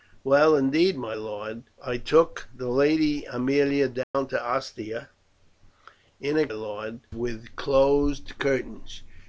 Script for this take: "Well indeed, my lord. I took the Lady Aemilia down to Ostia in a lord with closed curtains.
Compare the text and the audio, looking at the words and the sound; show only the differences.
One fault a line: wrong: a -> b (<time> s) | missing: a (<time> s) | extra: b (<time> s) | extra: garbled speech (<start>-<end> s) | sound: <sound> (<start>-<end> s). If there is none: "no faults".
sound: dropout (4.0-4.1 s)